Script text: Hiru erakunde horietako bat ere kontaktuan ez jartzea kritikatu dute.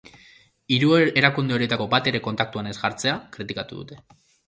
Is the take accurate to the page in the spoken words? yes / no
yes